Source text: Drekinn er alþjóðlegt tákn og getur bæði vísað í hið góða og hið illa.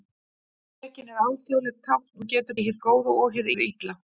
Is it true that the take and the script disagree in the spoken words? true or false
true